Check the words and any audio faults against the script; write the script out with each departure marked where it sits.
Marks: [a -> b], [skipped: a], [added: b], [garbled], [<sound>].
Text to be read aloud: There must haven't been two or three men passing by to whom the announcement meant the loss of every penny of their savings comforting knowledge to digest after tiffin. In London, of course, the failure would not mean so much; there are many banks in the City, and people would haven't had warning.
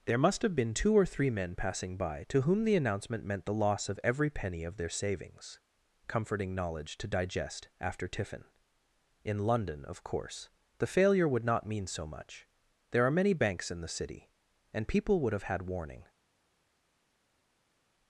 There must [haven't -> have] been two or three men passing by to whom the announcement meant the loss of every penny of their savings comforting knowledge to digest after tiffin. In London, of course, the failure would not mean so much; there are many banks in the City, and people would [haven't -> have] had warning.